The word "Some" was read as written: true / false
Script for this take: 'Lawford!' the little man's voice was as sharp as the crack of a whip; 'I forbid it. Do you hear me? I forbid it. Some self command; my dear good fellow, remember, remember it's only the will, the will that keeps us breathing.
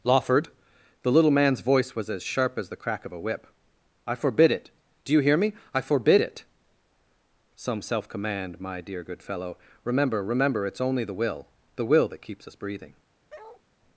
true